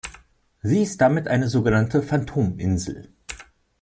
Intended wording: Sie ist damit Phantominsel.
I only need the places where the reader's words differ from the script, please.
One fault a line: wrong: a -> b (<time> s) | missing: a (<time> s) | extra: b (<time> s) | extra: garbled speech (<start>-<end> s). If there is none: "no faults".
extra: eine sogenannte (1.3 s)